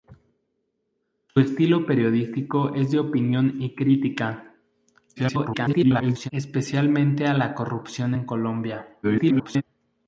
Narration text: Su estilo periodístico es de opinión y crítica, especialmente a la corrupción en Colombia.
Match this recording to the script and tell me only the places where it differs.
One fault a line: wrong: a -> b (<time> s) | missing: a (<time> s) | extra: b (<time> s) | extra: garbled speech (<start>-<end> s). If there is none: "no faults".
extra: garbled speech (5.2-6.3 s)
extra: garbled speech (9.0-9.6 s)